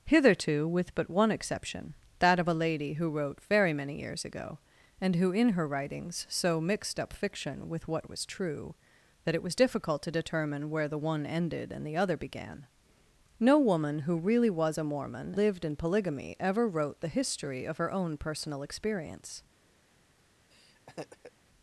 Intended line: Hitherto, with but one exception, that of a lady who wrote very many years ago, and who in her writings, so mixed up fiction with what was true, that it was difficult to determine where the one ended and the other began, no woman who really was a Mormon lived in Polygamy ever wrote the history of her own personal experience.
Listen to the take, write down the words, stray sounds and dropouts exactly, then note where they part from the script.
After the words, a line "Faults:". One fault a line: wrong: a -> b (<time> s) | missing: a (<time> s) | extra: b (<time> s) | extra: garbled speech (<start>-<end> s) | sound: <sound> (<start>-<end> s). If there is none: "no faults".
Hitherto, with but one exception, that of a lady who wrote very many years ago, and who in her writings, so mixed up fiction with what was true, that it was difficult to determine where the one ended and the other began, no woman who really was a Mormon lived in Polygamy ever wrote the history of her own personal experience.
Faults:
sound: laugh (20.5-21.3 s)